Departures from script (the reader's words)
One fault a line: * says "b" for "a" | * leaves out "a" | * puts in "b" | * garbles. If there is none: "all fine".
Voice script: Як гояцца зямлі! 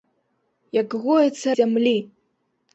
all fine